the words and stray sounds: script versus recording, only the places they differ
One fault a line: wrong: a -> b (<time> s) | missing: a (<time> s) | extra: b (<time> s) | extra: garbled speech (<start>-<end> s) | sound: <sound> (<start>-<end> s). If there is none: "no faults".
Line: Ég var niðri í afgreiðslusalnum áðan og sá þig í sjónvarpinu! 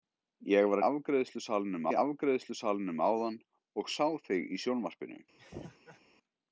wrong: niðri -> afgreiðslusalnum (0.9 s)
sound: laugh (5.4-6.0 s)